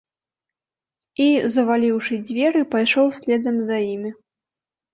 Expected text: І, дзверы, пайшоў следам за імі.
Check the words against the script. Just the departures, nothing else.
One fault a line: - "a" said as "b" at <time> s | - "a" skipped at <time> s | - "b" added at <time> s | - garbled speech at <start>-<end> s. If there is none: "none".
- "заваліўшы" added at 1.6 s